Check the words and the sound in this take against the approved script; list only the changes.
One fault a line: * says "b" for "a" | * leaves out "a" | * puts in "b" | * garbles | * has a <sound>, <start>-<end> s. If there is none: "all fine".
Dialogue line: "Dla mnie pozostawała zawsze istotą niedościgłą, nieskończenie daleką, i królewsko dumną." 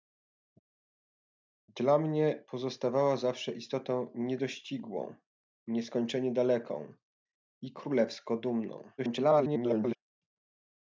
* garbles